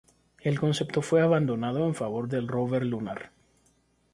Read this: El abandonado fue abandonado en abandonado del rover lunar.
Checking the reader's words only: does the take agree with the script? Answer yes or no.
no